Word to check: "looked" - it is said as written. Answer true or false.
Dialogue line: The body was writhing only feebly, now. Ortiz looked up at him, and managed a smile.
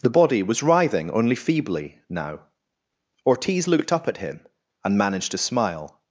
true